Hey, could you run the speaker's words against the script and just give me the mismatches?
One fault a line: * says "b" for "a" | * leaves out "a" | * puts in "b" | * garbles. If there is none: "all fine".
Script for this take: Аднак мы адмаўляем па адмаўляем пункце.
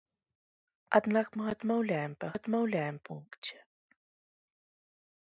all fine